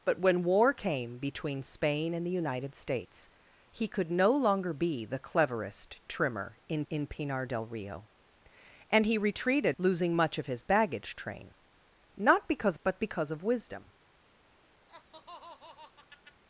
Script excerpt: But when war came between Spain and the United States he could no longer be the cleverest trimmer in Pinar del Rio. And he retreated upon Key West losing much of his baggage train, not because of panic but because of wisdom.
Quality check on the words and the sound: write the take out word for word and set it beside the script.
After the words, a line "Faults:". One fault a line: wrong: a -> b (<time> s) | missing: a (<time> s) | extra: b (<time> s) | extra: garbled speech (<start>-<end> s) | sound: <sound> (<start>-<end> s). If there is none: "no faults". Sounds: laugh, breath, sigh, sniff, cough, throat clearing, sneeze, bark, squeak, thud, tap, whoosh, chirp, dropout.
But when war came between Spain and the United States he could no longer be the cleverest trimmer in in Pinar del Rio. And he retreated losing much of his baggage train, not because but because of wisdom.
Faults:
extra: in (6.9 s)
missing: upon Key West (9.8 s)
missing: of panic (12.8 s)
sound: laugh (14.9-16.4 s)